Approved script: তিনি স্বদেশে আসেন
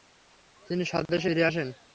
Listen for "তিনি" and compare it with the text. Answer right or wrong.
right